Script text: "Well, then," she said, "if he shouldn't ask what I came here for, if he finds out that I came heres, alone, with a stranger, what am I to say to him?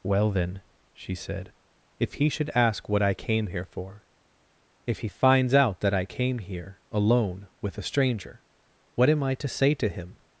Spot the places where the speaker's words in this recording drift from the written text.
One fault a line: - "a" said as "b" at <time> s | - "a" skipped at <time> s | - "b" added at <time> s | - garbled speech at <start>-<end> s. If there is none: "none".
- "shouldn't" said as "should" at 2.3 s
- "heres" said as "here" at 6.4 s